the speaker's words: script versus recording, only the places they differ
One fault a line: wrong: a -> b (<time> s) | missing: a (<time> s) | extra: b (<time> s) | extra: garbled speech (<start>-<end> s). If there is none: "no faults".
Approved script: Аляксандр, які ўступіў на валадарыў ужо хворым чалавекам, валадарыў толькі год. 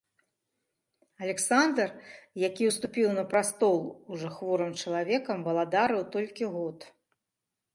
wrong: валадарыў -> прастол (3.3 s)